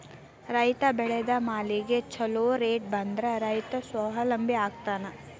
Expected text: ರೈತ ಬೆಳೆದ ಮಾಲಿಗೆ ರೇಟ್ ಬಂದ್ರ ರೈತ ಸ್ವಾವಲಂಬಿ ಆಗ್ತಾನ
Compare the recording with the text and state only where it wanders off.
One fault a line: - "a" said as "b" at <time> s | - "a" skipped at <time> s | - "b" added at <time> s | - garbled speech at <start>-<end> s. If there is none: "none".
- "ಛೊಲೊ" added at 2.1 s